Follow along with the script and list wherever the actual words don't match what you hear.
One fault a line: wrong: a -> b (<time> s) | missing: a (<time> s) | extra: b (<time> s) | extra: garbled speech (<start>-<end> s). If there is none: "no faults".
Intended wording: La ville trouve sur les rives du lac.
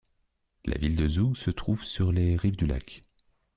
extra: de Zoug se (0.9 s)